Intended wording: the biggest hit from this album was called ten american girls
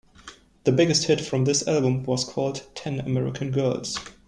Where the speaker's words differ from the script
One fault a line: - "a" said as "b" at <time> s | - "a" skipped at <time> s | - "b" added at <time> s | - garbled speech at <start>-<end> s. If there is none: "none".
none